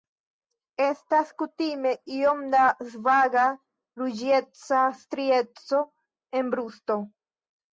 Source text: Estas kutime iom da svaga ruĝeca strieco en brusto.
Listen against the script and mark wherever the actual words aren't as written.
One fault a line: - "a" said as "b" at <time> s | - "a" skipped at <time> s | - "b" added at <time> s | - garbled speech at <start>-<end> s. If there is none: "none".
none